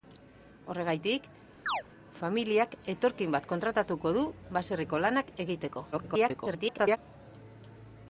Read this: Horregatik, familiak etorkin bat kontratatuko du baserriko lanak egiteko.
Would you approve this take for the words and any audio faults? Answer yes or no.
no